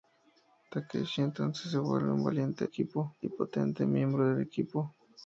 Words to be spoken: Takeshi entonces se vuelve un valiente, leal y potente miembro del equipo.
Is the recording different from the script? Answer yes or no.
yes